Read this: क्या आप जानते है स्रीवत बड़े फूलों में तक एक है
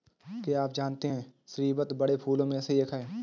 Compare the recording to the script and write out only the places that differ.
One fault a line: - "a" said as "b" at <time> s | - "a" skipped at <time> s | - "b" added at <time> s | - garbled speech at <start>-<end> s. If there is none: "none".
- "तक" said as "से" at 2.6 s